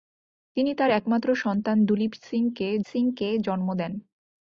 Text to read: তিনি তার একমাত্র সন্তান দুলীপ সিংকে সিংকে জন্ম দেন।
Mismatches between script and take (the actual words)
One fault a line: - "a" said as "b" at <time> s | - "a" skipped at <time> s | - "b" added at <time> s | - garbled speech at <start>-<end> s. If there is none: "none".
none